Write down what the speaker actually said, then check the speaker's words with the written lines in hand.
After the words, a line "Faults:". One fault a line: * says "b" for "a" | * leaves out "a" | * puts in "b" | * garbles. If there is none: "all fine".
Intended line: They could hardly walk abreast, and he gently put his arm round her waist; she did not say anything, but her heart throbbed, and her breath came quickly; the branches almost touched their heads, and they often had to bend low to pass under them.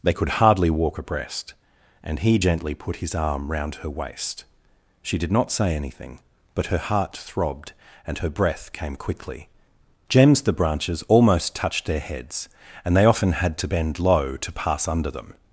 They could hardly walk abreast, and he gently put his arm round her waist; she did not say anything, but her heart throbbed, and her breath came quickly; gems the branches almost touched their heads, and they often had to bend low to pass under them.
Faults:
* puts in "gems"